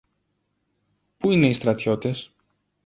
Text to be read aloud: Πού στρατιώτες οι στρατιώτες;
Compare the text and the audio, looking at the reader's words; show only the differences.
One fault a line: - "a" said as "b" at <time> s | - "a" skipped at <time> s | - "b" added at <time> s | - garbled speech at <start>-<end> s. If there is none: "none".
- "στρατιώτες" said as "είναι" at 1.3 s